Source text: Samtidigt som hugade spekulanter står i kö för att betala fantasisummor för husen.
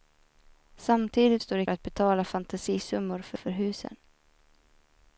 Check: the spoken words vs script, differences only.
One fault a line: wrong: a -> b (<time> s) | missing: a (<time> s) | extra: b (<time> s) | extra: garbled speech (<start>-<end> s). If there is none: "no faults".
missing: som hugade spekulanter (1.4 s)
missing: kö för (1.7 s)
extra: för (3.3 s)